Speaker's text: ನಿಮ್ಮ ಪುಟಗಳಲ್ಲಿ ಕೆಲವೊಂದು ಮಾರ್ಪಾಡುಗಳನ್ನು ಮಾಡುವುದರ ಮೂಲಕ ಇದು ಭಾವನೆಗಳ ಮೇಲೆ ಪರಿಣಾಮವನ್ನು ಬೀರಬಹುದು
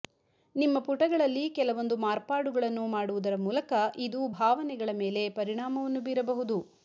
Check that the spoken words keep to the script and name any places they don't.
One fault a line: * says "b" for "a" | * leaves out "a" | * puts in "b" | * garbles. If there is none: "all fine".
all fine